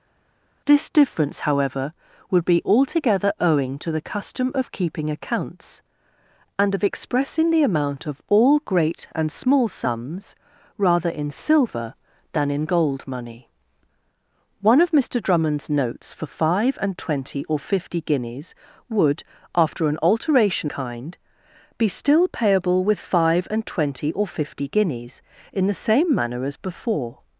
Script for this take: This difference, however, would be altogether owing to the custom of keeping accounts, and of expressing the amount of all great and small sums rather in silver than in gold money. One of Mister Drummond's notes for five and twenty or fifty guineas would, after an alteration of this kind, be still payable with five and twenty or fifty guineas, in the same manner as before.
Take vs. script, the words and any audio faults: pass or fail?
fail